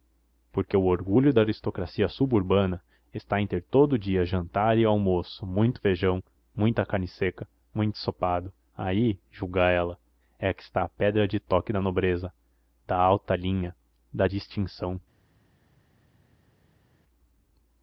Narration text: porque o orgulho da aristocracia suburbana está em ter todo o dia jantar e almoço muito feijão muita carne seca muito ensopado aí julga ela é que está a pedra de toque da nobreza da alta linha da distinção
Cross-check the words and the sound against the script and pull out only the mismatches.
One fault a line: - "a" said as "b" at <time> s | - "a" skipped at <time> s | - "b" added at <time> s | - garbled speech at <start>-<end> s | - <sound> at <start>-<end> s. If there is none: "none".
none